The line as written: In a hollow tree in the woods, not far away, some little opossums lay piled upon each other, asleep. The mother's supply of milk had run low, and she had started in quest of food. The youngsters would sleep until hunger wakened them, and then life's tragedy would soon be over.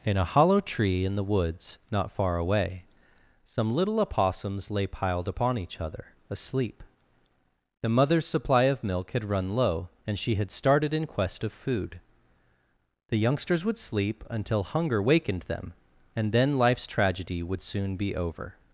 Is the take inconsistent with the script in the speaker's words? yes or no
no